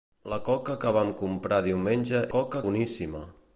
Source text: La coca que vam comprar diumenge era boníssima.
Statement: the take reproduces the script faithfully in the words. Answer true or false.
false